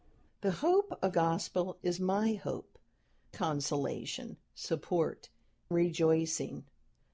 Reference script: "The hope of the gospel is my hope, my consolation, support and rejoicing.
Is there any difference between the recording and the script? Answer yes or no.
yes